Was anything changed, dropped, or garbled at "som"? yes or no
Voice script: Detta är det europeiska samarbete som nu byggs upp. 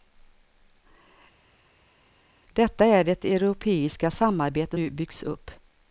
yes